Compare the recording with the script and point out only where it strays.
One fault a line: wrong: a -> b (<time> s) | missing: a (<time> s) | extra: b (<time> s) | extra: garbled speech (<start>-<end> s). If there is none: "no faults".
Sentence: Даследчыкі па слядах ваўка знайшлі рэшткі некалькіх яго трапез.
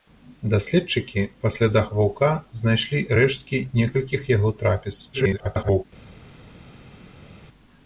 extra: garbled speech (5.1-5.8 s)